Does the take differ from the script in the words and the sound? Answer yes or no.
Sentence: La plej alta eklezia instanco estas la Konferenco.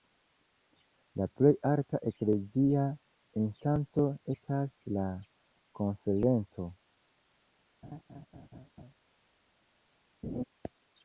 yes